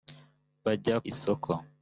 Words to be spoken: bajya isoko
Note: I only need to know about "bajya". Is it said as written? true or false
true